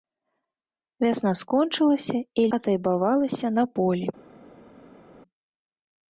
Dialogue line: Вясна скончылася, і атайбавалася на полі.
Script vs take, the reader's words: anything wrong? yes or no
no